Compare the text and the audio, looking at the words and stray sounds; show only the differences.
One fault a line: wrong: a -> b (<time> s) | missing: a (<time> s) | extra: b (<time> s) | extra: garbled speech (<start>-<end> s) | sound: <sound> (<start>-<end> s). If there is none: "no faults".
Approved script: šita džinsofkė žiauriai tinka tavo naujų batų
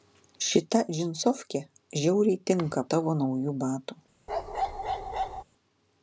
sound: bark (4.3-5.4 s)